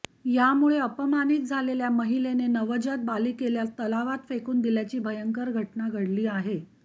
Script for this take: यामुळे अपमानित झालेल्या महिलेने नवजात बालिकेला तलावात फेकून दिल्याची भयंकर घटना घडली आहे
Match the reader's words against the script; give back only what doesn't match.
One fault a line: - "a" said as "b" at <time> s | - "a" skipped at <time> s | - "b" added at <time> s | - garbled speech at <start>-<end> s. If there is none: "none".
none